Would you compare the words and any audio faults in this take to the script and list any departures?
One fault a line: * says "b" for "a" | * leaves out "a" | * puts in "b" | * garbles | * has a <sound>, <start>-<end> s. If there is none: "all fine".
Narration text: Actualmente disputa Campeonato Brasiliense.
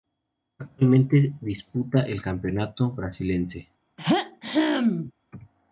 * puts in "el"
* has a throat clearing, 4.0-5.1 s